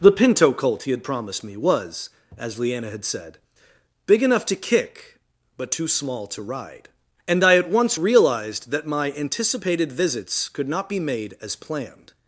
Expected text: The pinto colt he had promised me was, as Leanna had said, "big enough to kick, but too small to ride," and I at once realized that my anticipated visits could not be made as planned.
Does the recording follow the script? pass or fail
pass